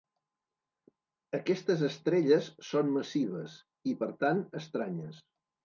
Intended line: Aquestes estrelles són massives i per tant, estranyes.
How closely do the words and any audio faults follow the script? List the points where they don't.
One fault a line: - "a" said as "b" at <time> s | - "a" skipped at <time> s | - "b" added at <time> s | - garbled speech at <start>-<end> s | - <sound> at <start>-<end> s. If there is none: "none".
none